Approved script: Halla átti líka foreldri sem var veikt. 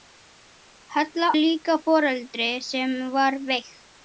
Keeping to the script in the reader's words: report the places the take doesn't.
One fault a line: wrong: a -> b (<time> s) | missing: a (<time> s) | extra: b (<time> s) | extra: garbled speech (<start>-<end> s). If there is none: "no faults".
missing: átti (1.3 s)